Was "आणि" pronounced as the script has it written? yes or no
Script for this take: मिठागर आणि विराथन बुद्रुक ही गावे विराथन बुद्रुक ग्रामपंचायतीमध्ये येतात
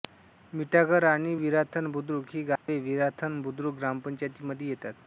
yes